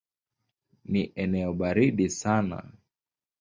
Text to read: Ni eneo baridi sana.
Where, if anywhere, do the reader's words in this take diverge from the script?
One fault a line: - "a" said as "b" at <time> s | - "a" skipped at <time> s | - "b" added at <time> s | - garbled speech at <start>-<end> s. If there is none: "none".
none